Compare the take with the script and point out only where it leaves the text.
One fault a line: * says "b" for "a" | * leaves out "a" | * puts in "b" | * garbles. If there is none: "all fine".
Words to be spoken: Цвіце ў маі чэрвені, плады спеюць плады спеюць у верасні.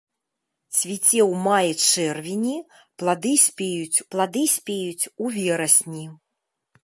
all fine